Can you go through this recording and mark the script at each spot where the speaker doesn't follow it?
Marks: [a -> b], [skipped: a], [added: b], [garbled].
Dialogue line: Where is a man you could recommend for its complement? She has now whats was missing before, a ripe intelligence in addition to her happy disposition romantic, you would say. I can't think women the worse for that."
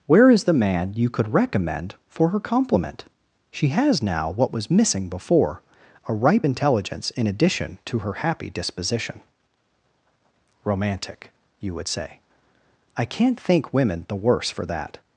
Where is [a -> the] man you could recommend for [its -> her] complement? She has now [whats -> what] was missing before, a ripe intelligence in addition to her happy disposition romantic, you would say. I can't think women the worse for that."